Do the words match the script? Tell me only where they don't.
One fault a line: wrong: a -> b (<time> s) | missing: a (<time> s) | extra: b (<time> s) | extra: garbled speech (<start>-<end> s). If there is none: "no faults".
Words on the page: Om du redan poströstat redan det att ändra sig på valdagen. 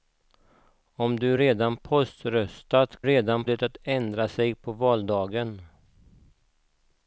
no faults